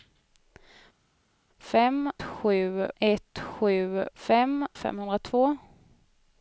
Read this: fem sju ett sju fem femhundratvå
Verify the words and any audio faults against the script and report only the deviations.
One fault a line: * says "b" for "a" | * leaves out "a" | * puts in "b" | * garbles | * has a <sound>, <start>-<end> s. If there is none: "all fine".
all fine